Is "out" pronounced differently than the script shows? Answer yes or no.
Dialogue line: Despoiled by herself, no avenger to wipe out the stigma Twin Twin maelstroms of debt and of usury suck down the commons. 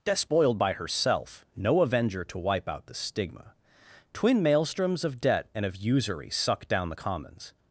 no